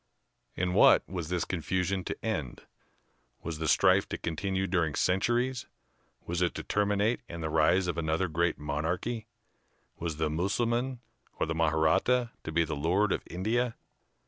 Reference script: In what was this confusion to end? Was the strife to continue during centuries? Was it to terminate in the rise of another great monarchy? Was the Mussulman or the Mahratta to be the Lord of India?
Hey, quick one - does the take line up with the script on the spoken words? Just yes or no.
yes